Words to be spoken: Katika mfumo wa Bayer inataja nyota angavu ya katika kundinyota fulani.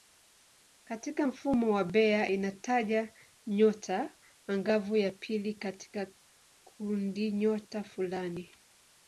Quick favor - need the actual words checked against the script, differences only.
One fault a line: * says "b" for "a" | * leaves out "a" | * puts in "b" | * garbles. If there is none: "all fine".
* puts in "pili"